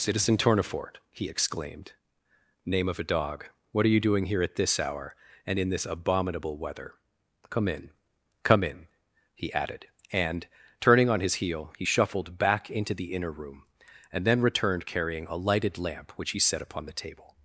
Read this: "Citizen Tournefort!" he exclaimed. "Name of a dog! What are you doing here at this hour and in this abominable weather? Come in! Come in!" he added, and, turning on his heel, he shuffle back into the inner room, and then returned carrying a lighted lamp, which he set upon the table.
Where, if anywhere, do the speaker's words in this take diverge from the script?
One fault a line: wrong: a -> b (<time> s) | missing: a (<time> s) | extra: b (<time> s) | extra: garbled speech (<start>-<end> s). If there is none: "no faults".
wrong: shuffle -> shuffled (11.8 s)